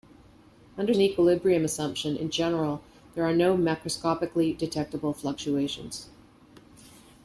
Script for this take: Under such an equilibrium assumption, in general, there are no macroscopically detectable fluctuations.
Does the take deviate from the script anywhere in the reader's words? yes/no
yes